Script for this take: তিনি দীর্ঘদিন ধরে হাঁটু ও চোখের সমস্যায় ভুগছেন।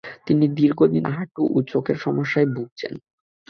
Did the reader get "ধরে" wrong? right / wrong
wrong